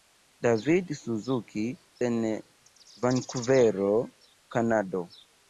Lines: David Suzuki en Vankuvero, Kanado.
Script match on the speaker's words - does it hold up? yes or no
yes